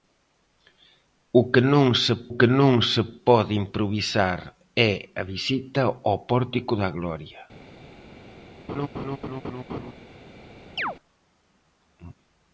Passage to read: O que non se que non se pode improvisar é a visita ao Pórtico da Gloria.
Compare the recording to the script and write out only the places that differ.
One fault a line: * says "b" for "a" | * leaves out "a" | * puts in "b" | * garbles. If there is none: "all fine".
all fine